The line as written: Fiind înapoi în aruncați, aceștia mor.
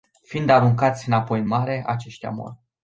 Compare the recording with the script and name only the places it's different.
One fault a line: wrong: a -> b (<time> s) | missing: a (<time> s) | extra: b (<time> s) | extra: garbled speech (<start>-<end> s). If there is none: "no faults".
extra: aruncați (0.5 s)
wrong: aruncați -> mare (1.5 s)